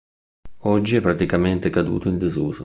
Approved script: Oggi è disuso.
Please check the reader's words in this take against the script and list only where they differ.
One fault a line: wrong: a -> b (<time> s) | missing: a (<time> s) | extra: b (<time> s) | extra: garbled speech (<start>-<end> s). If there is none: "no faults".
extra: praticamente caduto in (1.0 s)